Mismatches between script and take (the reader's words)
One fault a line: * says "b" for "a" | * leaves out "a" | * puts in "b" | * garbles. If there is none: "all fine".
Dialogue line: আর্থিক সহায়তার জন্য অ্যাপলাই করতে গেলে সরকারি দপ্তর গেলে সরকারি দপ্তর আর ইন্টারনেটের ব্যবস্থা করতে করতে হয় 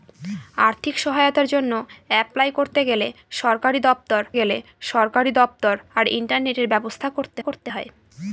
all fine